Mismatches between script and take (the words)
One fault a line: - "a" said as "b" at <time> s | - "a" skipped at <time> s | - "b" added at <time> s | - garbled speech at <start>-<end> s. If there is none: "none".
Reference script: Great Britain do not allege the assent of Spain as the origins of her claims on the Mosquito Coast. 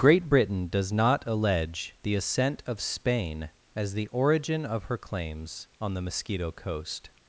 - "do" said as "does" at 0.7 s
- "origins" said as "origin" at 4.1 s